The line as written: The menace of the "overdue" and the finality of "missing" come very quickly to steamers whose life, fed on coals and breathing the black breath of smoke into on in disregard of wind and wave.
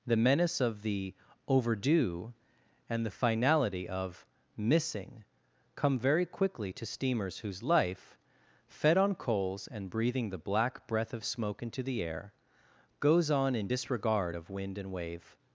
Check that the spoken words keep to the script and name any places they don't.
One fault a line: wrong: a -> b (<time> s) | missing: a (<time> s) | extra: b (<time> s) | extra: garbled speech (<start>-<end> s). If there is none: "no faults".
extra: the air goes (11.8 s)